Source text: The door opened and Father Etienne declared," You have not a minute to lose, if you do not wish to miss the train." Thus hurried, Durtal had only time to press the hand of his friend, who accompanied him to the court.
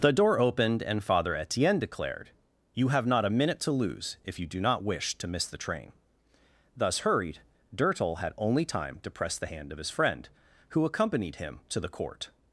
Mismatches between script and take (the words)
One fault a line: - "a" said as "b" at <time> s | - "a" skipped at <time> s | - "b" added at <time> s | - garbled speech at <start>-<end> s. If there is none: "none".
none